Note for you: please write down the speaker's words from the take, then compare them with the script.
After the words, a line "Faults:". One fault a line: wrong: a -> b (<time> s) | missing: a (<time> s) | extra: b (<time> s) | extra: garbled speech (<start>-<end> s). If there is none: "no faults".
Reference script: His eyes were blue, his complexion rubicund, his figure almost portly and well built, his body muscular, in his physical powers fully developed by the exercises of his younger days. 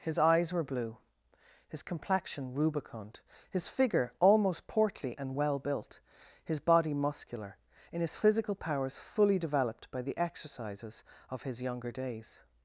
His eyes were blue, his complexion rubicund, his figure almost portly and well built, his body muscular, in his physical powers fully developed by the exercises of his younger days.
Faults:
no faults